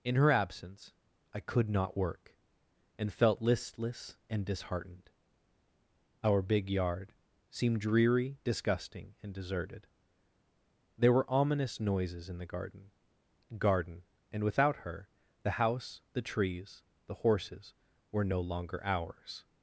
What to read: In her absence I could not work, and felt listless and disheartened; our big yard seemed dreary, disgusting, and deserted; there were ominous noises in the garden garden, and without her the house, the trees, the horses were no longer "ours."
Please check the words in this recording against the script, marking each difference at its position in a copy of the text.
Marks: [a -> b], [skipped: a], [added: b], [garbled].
In her absence I could not work, and felt listless and disheartened; our big yard seemed dreary, disgusting, and deserted; there were ominous noises in the garden garden, and without her the house, the trees, the horses were no longer "ours."